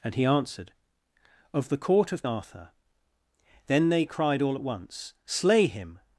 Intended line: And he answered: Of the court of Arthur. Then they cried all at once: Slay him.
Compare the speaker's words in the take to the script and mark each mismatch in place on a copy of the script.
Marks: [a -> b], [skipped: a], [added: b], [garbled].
And he answered: Of the court of Arthur. Then they cried all at once: Slay him.